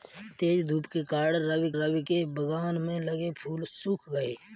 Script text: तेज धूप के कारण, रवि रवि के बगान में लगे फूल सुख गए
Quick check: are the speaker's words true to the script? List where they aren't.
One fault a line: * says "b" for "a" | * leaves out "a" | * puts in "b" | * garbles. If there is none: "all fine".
all fine